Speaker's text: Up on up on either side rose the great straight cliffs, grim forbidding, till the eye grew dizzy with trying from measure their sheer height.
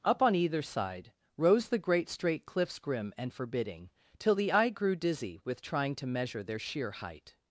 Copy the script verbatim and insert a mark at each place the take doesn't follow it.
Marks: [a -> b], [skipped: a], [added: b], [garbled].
Up on [skipped: up on] either side rose the great straight cliffs, grim [added: and] forbidding, till the eye grew dizzy with trying [from -> to] measure their sheer height.